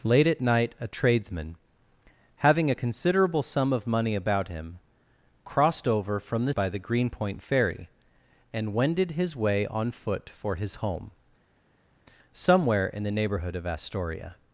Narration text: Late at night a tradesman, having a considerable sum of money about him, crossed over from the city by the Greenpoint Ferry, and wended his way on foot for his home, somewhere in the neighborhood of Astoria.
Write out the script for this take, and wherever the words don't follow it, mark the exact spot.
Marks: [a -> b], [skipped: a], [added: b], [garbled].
Late at night a tradesman, having a considerable sum of money about him, crossed over from the [skipped: city] by the Greenpoint Ferry, and wended his way on foot for his home, somewhere in the neighborhood of Astoria.